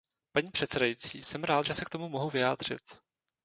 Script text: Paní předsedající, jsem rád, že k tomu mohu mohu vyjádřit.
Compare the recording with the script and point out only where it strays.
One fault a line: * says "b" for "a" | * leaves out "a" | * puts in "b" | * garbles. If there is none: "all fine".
* puts in "se"
* leaves out "mohu"